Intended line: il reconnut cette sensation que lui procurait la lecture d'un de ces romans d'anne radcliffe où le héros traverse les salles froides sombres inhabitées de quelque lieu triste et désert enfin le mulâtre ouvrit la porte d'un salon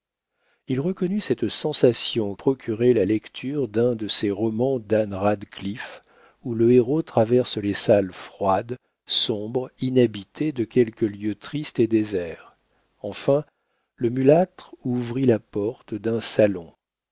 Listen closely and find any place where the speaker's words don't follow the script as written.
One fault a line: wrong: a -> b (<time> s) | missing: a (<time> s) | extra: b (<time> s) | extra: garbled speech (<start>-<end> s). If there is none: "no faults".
missing: que lui (2.3 s)